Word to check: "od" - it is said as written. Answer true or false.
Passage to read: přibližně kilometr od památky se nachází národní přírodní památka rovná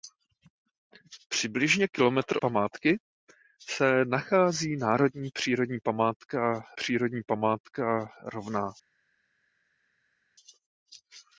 false